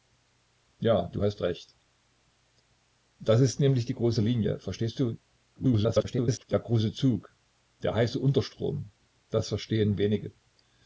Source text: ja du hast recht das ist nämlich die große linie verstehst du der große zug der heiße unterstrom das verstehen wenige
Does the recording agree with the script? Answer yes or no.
no